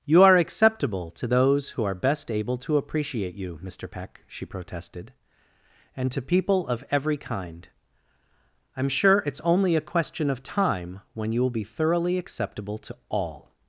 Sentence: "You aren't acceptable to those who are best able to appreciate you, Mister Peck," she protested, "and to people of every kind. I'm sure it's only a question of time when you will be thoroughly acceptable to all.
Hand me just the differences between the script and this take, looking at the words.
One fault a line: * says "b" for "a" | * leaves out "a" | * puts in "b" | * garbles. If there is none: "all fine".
* says "are" for "aren't"